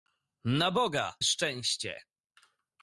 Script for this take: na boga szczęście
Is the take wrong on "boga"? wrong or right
right